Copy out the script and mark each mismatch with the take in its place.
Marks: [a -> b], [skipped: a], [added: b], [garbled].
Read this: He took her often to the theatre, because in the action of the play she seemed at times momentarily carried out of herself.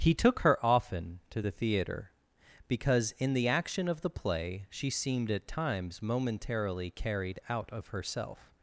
He took her often to the theatre, because in the action of the play she seemed at times momentarily carried out of herself.